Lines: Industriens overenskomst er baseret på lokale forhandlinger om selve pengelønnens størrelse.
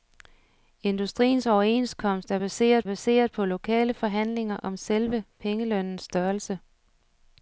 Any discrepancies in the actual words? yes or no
yes